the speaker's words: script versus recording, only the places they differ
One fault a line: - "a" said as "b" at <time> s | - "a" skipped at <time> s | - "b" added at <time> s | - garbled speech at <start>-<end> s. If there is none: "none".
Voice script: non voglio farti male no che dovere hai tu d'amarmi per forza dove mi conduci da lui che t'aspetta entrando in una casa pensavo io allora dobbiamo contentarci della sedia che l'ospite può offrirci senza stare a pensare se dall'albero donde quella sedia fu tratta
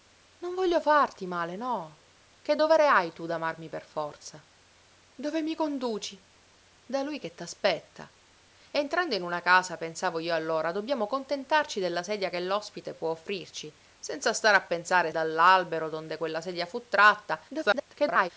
- "se" skipped at 15.1 s
- garbled speech at 17.5-18.3 s